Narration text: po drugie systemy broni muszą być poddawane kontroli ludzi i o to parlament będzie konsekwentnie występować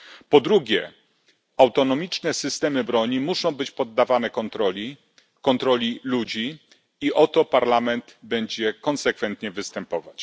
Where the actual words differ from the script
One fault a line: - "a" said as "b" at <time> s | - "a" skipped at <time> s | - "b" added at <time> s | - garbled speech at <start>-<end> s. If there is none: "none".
- "autonomiczne" added at 1.6 s